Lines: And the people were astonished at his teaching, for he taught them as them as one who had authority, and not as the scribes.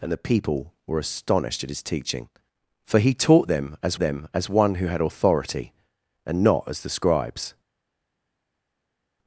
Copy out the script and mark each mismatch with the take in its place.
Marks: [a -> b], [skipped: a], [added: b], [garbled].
And the people were astonished at his teaching, for he taught them as them as one who had authority, and not as the scribes.